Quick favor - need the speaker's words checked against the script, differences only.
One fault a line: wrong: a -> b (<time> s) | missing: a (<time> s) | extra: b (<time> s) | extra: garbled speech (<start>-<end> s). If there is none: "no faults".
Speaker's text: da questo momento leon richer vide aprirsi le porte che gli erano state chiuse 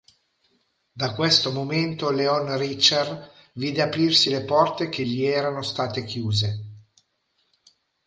no faults